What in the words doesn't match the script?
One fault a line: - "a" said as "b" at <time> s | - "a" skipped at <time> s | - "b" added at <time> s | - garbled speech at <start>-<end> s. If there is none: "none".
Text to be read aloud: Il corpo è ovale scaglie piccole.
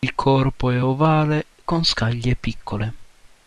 - "con" added at 1.7 s